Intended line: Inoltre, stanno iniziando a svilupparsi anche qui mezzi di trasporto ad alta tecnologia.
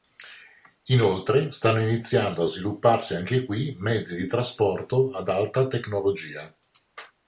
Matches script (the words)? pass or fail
pass